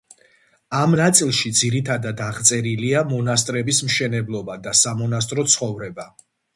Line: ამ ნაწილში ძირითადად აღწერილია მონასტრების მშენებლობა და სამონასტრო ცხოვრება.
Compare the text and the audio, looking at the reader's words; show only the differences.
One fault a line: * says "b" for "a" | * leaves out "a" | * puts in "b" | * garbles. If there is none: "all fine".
all fine